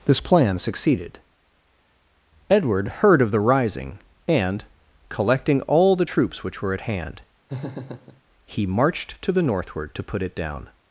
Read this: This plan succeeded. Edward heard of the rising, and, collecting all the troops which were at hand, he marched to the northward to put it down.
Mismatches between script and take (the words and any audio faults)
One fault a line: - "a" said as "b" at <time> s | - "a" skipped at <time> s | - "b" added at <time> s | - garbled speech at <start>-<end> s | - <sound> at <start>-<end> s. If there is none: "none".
- laugh at 7.5-8.2 s